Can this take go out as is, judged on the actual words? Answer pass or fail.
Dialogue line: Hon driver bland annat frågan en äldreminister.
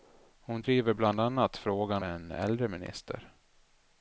pass